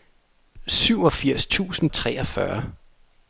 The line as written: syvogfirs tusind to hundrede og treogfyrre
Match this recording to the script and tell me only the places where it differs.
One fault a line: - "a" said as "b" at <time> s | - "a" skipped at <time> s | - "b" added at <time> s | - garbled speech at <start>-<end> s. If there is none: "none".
- "to hundrede og" skipped at 1.9 s